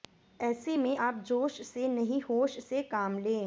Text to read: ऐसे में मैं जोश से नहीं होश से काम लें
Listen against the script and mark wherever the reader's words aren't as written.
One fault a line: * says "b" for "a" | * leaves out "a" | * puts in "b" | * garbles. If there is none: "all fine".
* says "आप" for "मैं"